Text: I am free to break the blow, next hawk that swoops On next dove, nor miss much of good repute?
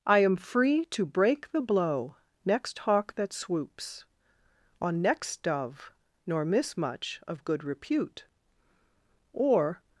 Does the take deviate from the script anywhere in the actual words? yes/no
yes